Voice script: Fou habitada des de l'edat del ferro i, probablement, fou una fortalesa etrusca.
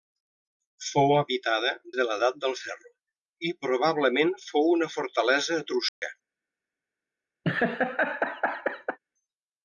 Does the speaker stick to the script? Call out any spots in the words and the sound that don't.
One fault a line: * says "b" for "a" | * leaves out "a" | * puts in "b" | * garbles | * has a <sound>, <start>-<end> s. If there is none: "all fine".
* leaves out "des"
* has a dropout, 5.9-6.0 s
* has a laugh, 7.4-9.0 s